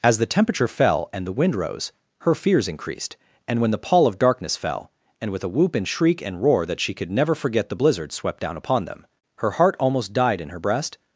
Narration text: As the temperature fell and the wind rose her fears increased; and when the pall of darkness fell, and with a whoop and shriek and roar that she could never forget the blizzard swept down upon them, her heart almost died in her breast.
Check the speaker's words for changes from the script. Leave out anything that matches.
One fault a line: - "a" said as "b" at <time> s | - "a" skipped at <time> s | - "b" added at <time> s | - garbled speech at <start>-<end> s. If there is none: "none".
none